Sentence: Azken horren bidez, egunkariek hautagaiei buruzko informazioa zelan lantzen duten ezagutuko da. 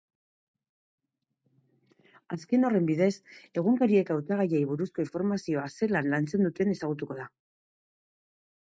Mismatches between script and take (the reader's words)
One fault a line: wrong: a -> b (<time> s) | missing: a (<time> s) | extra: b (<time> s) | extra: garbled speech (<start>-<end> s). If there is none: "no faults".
no faults